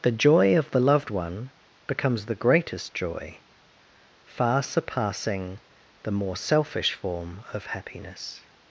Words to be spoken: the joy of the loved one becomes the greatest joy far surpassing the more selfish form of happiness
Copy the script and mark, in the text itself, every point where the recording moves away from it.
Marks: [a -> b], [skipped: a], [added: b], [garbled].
the joy of the loved one becomes the greatest joy far surpassing the more selfish form of happiness